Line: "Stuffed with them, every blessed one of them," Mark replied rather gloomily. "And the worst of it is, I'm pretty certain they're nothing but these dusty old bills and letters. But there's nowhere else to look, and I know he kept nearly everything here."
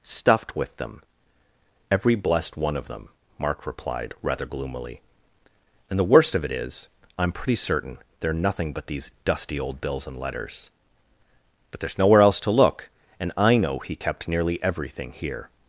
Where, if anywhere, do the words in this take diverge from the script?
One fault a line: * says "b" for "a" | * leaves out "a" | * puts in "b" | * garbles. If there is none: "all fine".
all fine